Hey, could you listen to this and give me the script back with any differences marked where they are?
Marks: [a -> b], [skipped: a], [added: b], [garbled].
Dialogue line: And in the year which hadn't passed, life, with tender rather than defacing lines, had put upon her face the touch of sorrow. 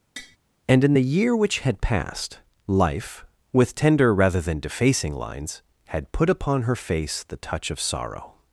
And in the year which [hadn't -> had] passed, life, with tender rather than defacing lines, had put upon her face the touch of sorrow.